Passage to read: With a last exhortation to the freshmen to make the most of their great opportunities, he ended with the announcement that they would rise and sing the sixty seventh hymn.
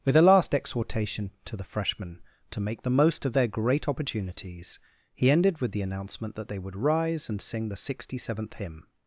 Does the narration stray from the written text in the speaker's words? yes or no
no